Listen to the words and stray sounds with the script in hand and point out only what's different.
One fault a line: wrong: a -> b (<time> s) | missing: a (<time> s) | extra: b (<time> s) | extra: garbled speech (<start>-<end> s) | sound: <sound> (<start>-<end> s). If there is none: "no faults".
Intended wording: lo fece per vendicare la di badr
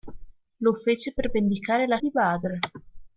no faults